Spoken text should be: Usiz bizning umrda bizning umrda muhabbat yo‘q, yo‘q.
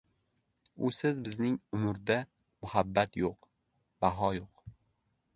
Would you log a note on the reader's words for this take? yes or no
yes